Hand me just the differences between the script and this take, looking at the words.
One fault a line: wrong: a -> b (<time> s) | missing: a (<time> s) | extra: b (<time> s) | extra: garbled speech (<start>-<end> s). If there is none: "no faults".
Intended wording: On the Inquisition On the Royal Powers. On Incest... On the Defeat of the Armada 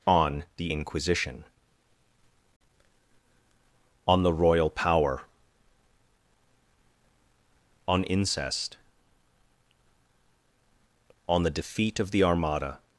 wrong: Powers -> Power (4.7 s)